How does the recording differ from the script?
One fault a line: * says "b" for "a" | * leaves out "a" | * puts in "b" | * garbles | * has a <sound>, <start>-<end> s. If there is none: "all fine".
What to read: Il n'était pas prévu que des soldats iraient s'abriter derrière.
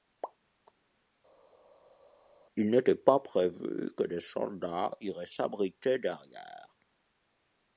all fine